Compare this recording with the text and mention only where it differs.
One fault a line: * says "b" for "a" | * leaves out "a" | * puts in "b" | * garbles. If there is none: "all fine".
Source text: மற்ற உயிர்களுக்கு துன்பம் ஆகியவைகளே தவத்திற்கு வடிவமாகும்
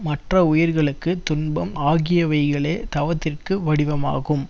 all fine